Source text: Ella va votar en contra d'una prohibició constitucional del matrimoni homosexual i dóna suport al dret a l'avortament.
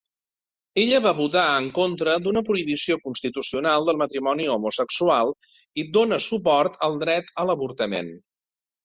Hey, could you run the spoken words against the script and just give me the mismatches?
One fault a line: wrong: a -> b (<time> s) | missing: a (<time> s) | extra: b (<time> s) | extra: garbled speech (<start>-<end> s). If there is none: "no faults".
no faults